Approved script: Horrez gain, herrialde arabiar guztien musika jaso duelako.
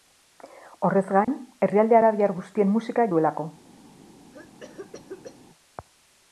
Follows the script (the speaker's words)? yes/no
no